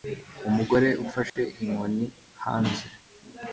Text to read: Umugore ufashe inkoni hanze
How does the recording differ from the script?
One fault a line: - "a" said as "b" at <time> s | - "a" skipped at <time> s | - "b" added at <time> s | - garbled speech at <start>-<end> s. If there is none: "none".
none